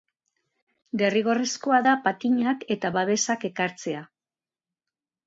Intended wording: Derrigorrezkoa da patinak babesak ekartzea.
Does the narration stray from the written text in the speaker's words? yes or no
yes